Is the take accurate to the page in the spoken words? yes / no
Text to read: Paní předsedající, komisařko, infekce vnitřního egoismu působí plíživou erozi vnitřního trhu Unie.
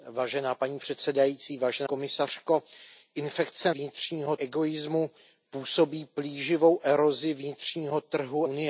yes